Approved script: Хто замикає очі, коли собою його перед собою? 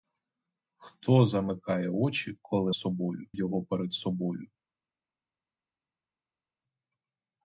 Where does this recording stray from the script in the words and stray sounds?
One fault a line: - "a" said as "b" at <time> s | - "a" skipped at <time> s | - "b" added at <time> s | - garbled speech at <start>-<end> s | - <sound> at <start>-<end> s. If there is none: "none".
none